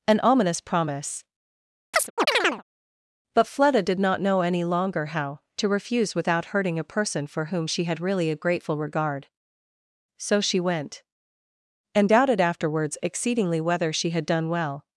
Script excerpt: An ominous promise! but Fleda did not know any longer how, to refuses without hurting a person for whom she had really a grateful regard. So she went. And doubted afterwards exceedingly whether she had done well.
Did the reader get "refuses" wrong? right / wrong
wrong